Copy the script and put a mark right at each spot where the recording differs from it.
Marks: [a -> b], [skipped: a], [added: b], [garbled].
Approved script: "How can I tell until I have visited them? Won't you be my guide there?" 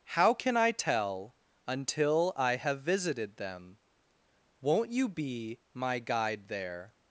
"How can I tell until I have visited them? Won't you be my guide there?"